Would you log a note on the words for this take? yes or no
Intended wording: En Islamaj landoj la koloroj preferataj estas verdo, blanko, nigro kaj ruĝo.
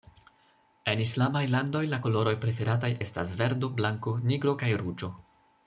no